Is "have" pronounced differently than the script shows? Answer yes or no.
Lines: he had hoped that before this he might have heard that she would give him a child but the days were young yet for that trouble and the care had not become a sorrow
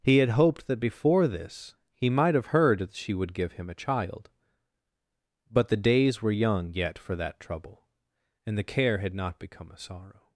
no